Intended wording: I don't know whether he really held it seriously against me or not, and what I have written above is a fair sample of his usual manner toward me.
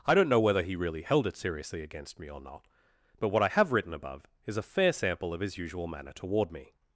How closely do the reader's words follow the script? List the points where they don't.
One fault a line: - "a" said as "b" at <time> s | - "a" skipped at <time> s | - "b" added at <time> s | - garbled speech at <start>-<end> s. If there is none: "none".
- "and" said as "but" at 3.2 s